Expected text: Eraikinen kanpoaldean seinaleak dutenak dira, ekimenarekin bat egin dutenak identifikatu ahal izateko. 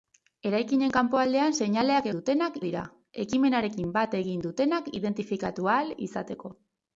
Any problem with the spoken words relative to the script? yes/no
no